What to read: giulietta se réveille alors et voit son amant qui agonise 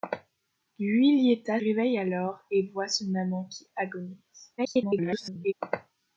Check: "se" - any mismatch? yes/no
yes